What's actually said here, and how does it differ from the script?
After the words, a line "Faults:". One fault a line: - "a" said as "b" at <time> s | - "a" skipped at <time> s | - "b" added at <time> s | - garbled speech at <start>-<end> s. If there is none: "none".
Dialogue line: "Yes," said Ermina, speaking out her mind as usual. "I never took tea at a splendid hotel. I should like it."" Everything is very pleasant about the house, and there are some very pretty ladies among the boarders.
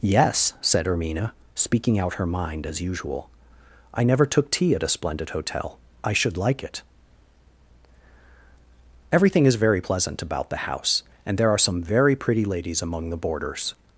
"Yes," said Ermina, speaking out her mind as usual. "I never took tea at a splendid hotel. I should like it."" Everything is very pleasant about the house, and there are some very pretty ladies among the boarders.
Faults:
none